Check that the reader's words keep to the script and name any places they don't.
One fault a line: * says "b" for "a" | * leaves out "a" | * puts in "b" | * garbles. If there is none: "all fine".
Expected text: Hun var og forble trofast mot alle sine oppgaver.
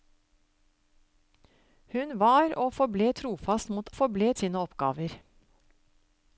* says "forble" for "alle"